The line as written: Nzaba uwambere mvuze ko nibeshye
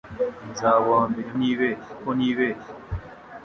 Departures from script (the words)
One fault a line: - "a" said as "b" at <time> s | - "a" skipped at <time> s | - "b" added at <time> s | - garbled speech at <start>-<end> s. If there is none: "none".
- "mvuze" said as "nibeshye" at 1.4 s